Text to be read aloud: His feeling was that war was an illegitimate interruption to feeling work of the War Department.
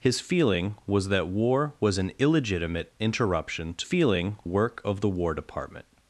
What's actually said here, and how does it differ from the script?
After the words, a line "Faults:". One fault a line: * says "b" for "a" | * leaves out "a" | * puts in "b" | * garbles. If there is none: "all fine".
His feeling was that war was an illegitimate interruption to feeling work of the War Department.
Faults:
all fine